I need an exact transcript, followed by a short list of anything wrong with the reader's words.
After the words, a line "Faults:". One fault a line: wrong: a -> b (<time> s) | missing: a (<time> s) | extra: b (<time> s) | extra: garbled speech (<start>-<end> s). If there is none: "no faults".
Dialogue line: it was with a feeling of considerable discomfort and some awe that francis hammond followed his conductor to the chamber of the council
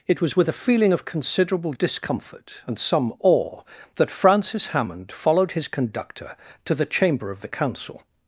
it was with a feeling of considerable discomfort and some awe that francis hammond followed his conductor to the chamber of the council
Faults:
no faults